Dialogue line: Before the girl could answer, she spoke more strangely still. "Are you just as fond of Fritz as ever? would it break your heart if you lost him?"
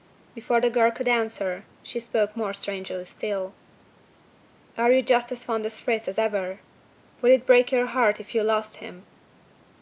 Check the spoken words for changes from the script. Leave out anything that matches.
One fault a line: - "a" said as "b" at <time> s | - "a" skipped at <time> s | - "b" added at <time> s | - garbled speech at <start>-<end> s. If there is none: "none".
none